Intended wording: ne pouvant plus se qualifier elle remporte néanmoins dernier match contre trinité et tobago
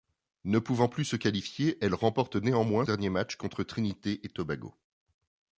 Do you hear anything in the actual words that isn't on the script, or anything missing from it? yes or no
no